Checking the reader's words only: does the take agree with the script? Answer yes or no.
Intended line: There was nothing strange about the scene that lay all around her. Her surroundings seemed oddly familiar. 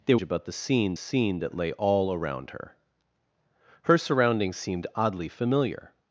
no